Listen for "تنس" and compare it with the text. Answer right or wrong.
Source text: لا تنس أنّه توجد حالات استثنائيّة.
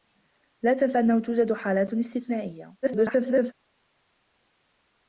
right